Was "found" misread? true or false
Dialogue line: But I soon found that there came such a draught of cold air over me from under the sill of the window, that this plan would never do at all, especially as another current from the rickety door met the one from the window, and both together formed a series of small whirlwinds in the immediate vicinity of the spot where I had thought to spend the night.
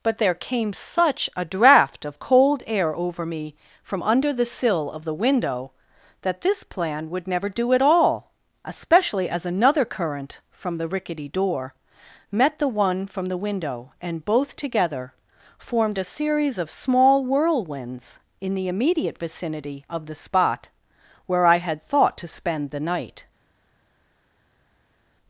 true